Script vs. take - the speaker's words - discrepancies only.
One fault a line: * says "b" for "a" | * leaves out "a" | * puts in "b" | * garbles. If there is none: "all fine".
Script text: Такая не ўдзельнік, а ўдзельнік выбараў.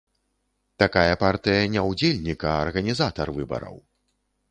* puts in "партыя"
* says "арганізатар" for "ўдзельнік"